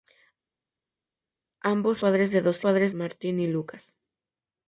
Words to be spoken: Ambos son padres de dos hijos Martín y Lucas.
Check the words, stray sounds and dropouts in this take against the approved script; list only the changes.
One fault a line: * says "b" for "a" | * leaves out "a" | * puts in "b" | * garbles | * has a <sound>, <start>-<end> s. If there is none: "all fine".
* leaves out "son"
* says "padres" for "hijos"